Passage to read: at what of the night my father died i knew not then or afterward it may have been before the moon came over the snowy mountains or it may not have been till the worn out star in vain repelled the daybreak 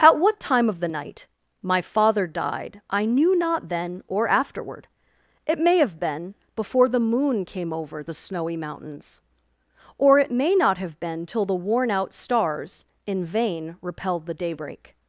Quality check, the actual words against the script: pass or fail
fail